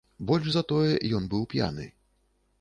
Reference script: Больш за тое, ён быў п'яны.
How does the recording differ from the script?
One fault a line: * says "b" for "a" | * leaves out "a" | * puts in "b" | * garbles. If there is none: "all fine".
all fine